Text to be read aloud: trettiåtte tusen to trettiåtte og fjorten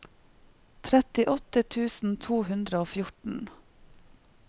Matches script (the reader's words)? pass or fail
fail